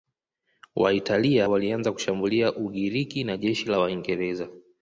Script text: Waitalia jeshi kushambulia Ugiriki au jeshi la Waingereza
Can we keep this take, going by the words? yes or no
no